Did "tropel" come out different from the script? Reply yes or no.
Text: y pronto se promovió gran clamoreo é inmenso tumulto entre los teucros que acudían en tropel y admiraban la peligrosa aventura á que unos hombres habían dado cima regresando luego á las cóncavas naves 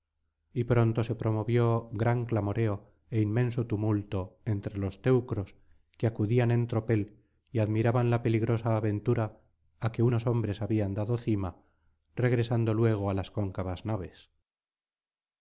no